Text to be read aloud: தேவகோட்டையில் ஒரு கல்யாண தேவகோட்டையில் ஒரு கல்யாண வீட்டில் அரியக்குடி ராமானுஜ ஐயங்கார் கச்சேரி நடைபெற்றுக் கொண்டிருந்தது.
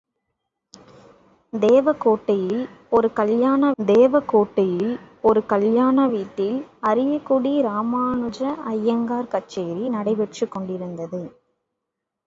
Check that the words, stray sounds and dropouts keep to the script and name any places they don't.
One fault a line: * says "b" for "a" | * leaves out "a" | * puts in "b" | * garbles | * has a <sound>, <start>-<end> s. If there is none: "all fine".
all fine